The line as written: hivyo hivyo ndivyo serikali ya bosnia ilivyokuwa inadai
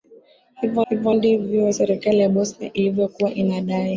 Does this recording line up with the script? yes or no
yes